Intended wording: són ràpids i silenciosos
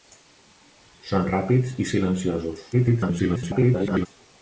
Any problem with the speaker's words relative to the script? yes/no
yes